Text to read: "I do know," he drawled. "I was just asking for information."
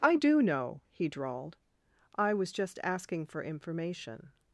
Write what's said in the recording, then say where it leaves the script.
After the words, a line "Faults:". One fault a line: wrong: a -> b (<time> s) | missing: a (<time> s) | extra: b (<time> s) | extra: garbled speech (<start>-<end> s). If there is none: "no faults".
"I do know," he drawled. "I was just asking for information."
Faults:
no faults